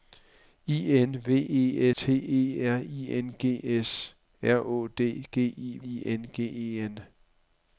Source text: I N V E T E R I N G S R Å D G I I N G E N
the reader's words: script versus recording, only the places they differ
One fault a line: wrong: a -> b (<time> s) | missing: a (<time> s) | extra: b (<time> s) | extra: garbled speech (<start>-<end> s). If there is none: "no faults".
no faults